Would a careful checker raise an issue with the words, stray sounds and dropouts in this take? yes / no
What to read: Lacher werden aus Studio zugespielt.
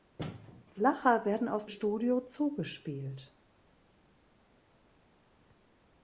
no